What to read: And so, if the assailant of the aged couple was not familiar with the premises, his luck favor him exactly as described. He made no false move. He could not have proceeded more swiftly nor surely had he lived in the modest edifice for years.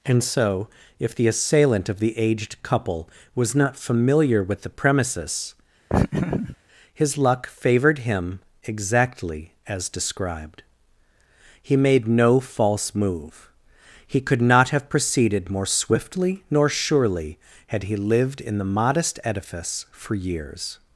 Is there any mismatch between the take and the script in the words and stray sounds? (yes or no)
yes